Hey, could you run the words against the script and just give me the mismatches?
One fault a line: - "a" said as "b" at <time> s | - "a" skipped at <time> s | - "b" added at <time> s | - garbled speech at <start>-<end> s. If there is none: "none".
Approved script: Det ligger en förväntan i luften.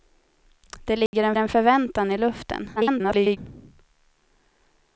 - "en" added at 1.4 s
- garbled speech at 2.8-3.4 s